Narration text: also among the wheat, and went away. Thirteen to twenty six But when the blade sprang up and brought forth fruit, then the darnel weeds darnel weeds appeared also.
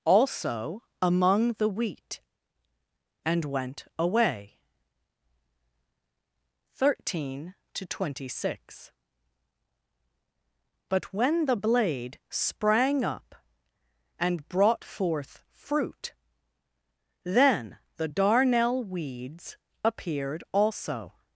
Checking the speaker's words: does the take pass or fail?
fail